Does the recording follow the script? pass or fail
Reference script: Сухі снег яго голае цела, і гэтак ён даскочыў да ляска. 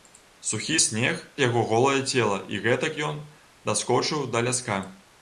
pass